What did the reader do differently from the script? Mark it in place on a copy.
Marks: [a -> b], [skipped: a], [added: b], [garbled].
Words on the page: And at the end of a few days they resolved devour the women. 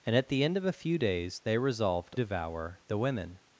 And at the end of a few days they resolved devour the women.